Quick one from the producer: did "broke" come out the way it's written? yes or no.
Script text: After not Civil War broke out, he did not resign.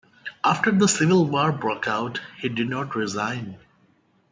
yes